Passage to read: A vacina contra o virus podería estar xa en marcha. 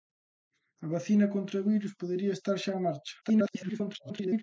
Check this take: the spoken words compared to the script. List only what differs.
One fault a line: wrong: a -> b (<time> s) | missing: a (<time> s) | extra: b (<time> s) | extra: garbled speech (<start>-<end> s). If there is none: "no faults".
extra: garbled speech (3.2-4.4 s)